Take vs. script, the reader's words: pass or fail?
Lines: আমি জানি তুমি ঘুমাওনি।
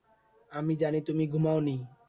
pass